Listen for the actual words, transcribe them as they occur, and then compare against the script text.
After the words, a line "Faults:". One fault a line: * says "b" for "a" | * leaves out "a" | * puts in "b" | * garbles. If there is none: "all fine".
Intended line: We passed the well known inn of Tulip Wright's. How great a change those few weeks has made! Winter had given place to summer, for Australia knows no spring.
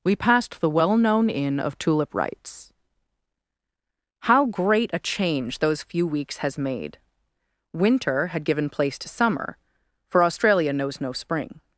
We passed the well known inn of Tulip Wright's. How great a change those few weeks has made! Winter had given place to summer, for Australia knows no spring.
Faults:
all fine